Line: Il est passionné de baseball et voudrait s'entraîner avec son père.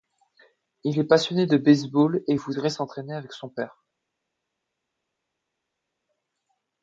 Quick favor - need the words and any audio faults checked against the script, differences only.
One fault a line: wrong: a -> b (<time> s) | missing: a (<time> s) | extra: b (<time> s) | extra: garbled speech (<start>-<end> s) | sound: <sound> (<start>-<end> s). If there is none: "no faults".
no faults